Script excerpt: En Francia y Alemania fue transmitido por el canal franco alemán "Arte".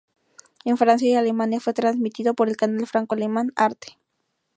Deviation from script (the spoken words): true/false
false